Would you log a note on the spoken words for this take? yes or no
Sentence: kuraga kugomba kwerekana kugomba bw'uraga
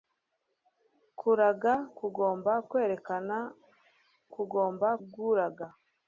no